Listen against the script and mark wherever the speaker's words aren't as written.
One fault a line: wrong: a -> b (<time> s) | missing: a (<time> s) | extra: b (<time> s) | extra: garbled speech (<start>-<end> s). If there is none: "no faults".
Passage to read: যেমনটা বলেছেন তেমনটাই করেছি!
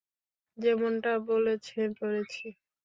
missing: তেমনটাই (1.9 s)